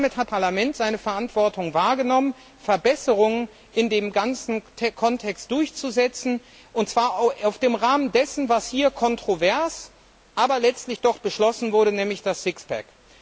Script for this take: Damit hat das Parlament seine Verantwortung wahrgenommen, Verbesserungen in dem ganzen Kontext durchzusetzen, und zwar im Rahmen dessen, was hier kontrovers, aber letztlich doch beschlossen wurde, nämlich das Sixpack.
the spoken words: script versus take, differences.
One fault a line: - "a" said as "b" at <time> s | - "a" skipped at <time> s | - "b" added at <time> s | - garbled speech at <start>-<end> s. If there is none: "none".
- "das" skipped at 0.3 s